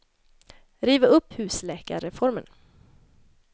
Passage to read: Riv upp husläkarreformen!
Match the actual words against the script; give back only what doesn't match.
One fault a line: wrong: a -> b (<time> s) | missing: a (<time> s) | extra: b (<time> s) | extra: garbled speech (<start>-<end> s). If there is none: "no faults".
no faults